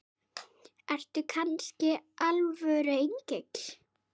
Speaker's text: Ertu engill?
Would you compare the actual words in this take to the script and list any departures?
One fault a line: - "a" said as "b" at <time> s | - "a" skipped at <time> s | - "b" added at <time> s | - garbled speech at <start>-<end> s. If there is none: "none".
- "kannski alvöru" added at 1.3 s